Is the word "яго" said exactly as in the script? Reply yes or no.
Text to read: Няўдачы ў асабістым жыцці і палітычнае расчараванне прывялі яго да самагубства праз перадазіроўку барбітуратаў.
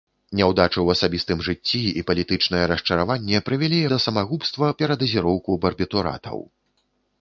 no